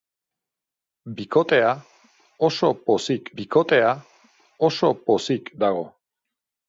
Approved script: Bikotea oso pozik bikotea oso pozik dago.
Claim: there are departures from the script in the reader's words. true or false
false